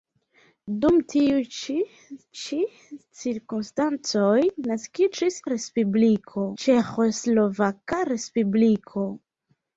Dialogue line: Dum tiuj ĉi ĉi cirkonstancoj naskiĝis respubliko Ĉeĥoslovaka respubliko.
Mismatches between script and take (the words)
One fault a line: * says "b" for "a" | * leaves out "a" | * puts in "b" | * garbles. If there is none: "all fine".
all fine